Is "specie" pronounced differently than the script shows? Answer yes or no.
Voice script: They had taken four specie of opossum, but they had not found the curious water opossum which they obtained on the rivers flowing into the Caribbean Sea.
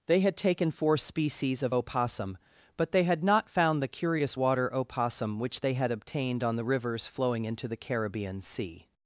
yes